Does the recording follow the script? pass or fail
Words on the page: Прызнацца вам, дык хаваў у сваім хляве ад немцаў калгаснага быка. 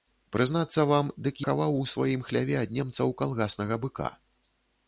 pass